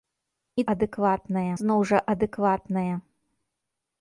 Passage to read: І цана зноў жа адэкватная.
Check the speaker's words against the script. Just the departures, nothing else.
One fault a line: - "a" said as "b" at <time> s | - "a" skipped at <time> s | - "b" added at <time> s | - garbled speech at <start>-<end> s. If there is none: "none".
- "цана" said as "адэкватная" at 0.7 s